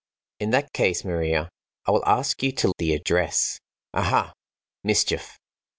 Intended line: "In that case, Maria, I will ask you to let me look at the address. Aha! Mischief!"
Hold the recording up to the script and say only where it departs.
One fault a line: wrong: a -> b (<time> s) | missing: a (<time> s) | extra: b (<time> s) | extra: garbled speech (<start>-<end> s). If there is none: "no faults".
missing: let me look (2.7 s)